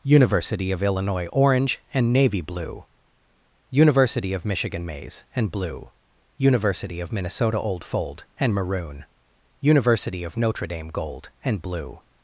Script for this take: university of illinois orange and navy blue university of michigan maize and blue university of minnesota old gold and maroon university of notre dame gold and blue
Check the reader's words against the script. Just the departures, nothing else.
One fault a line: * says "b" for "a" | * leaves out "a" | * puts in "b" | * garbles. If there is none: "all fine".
* says "fold" for "gold"